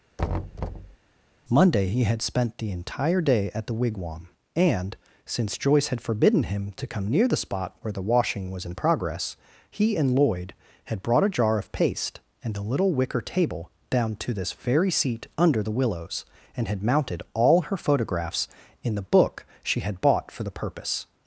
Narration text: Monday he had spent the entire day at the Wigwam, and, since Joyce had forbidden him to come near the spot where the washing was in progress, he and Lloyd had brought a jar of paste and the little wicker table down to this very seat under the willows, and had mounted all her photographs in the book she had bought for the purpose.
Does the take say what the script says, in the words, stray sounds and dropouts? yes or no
no